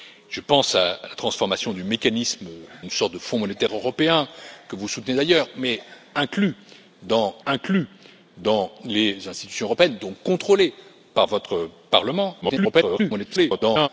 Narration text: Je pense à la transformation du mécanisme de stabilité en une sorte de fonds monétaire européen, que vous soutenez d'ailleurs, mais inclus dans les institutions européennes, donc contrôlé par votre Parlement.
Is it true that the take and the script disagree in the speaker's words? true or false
true